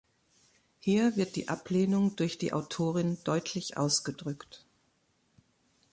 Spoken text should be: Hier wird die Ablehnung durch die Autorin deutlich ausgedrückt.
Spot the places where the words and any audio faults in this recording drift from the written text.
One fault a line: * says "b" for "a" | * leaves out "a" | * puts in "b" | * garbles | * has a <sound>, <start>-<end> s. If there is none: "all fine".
all fine